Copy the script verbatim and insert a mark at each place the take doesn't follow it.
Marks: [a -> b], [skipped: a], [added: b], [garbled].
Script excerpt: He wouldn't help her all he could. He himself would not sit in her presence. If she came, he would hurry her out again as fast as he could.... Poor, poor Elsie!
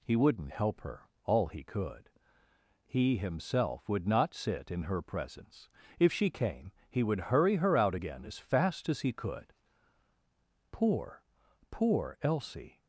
He wouldn't help her all he could. He himself would not sit in her presence. If she came, he would hurry her out again as fast as he could.... Poor, poor Elsie!